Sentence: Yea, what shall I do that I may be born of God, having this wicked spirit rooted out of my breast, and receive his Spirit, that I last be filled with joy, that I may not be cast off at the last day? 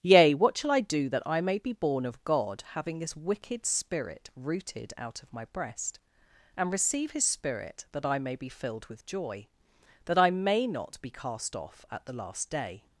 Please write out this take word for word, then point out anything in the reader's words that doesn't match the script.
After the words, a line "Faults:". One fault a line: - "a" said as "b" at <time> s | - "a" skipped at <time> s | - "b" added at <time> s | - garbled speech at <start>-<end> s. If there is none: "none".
Yea, what shall I do that I may be born of God, having this wicked spirit rooted out of my breast, and receive his Spirit, that I may be filled with joy, that I may not be cast off at the last day?
Faults:
- "last" said as "may" at 8.2 s